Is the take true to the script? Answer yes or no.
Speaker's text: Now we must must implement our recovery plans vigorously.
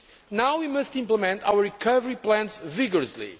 no